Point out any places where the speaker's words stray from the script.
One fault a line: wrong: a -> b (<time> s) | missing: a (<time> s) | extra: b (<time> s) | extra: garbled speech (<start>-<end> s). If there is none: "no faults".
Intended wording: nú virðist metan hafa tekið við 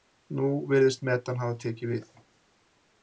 no faults